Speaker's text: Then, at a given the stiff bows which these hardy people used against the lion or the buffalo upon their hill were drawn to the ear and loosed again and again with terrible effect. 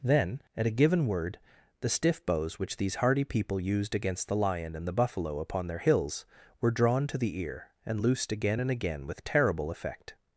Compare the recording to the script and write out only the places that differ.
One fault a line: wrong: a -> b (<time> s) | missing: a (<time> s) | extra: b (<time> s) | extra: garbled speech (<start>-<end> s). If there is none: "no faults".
extra: word (1.1 s)
wrong: or -> and (4.8 s)
wrong: hill -> hills (5.8 s)